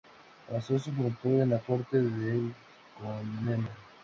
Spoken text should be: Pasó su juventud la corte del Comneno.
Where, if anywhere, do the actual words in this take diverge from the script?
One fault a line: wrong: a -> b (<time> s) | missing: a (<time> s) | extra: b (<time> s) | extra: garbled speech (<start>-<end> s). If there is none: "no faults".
extra: en (1.4 s)